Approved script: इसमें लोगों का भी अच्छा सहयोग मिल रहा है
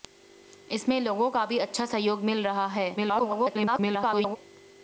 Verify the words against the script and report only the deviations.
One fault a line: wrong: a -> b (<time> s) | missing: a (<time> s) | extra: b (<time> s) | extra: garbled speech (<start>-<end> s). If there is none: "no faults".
extra: garbled speech (3.0-4.4 s)